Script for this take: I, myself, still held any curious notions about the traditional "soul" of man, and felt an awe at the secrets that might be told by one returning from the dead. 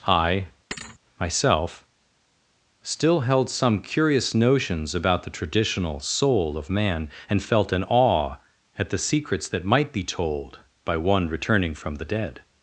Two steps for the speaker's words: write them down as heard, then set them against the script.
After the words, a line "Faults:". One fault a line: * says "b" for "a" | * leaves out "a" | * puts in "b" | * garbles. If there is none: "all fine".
I, myself, still held some curious notions about the traditional "soul" of man, and felt an awe at the secrets that might be told by one returning from the dead.
Faults:
* says "some" for "any"